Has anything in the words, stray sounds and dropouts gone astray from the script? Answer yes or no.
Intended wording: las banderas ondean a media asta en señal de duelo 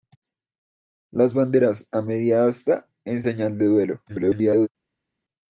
yes